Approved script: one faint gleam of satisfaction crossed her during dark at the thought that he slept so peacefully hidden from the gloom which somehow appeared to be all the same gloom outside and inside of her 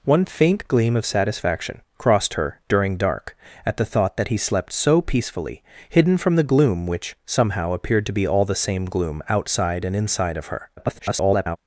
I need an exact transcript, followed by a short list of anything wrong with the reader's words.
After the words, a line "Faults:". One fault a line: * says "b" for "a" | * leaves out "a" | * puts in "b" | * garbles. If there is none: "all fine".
one faint gleam of satisfaction crossed her during dark at the thought that he slept so peacefully hidden from the gloom which somehow appeared to be all the same gloom outside and inside of her [garbled]
Faults:
* garbles